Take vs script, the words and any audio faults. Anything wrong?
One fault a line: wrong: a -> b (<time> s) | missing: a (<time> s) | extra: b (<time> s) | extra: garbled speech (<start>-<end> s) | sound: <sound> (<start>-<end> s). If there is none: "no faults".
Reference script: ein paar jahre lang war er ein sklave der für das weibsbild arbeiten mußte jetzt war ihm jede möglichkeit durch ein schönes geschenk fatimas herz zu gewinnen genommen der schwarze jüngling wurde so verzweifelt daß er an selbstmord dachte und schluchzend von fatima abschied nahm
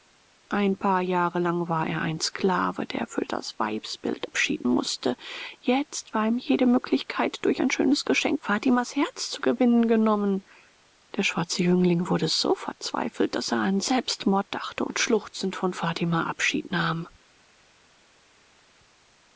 wrong: arbeiten -> abschied (4.2 s)